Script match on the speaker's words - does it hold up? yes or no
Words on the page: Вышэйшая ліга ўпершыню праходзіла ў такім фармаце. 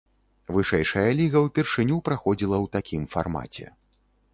yes